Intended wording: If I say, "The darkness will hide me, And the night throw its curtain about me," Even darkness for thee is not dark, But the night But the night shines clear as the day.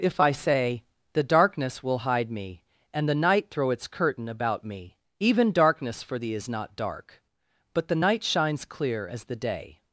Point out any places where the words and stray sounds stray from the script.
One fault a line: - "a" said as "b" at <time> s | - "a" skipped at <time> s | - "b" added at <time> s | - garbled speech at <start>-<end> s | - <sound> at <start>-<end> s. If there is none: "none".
- "But the night" skipped at 8.2 s